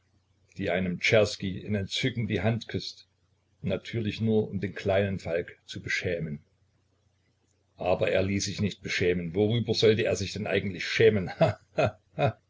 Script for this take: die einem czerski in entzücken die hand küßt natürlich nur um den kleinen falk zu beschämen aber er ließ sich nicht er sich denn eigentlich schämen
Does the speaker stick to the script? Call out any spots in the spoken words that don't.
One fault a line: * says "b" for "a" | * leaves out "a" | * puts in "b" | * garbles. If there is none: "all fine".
* puts in "beschämen worüber sollte"